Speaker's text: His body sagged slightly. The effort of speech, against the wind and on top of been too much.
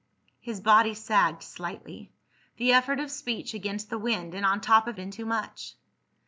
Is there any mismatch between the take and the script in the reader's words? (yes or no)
no